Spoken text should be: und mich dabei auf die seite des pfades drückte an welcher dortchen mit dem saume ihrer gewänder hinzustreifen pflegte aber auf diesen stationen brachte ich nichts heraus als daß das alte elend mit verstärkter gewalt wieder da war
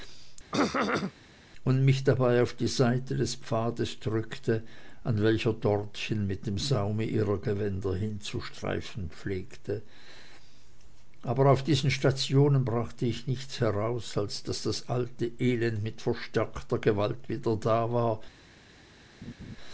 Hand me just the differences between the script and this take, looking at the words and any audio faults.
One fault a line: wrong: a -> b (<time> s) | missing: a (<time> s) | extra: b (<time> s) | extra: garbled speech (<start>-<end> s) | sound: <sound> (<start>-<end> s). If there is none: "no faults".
sound: throat clearing (0.5-1.1 s)
sound: laugh (19.2-19.6 s)